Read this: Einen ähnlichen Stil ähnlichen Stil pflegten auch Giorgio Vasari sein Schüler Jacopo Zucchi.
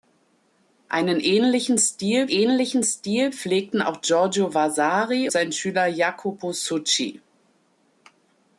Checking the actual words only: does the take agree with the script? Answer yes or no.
yes